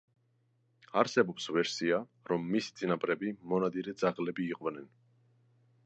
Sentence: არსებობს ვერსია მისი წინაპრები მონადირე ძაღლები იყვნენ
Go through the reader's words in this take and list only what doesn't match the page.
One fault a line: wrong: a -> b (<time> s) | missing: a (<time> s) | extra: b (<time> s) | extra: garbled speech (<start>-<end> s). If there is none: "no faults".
extra: რომ (2.3 s)